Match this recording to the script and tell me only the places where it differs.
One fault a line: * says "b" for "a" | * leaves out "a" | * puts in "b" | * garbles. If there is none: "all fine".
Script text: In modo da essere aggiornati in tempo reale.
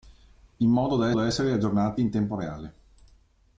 * puts in "da"